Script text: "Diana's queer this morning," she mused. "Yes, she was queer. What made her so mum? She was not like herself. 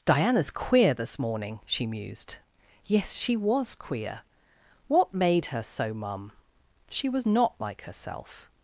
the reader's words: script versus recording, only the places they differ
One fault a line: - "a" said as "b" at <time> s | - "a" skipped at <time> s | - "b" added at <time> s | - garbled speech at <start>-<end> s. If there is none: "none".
none